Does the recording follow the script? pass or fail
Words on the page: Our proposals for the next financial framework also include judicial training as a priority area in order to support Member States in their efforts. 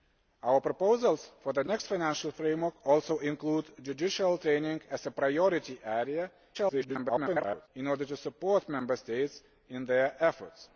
fail